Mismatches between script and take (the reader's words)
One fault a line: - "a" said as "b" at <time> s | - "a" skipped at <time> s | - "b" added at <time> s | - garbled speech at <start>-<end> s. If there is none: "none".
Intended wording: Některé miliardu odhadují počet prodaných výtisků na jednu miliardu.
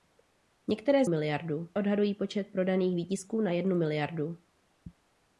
none